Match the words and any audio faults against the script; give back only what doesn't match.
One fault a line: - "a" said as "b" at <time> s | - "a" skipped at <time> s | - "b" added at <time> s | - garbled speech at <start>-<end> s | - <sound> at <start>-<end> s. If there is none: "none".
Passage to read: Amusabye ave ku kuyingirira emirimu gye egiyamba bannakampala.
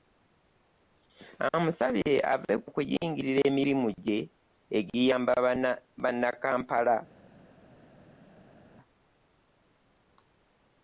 none